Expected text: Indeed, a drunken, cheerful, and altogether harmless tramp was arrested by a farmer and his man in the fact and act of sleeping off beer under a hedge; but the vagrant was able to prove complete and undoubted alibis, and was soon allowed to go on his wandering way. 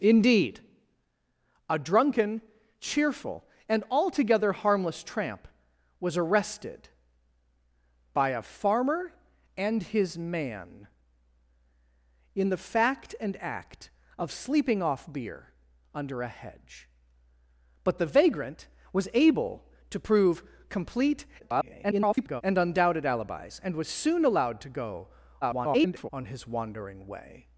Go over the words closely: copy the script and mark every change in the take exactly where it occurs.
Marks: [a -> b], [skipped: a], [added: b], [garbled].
Indeed, a drunken, cheerful, and altogether harmless tramp was arrested by a farmer and his man in the fact and act of sleeping off beer under a hedge; but the vagrant was able to prove complete [garbled] and undoubted alibis, and was soon allowed to go [garbled] on his wandering way.